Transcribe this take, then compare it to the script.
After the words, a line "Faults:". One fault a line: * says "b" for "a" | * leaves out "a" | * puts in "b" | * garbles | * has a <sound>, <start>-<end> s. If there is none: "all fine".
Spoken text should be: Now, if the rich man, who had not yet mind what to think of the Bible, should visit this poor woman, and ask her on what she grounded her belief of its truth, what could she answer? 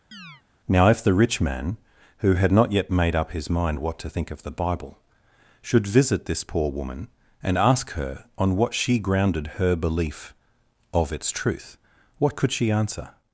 Now, if the rich man, who had not yet made up his mind what to think of the Bible, should visit this poor woman, and ask her on what she grounded her belief of its truth, what could she answer?
Faults:
* has a chirp, 0.1-0.4 s
* puts in "made up his"